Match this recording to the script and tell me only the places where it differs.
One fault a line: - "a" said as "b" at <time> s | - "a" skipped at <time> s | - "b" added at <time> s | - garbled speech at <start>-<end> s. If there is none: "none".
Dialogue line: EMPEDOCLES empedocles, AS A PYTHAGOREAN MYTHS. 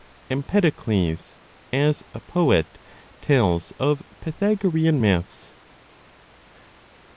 - "empedocles" skipped at 1.4 s
- "POET TELLS OF" added at 2.2 s